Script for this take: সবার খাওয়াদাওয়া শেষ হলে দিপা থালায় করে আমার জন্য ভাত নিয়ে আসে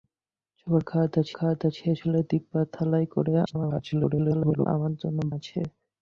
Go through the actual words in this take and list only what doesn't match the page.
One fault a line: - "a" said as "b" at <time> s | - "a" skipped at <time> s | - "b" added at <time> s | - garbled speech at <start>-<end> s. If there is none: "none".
- "খাওয়াদাওয়া" added at 1.3 s
- garbled speech at 3.5-4.7 s
- "ভাত নিয়ে" skipped at 5.2 s